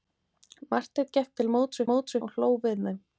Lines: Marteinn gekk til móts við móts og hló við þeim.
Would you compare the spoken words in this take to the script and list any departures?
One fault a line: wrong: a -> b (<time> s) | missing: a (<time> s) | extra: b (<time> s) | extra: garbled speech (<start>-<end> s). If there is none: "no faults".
no faults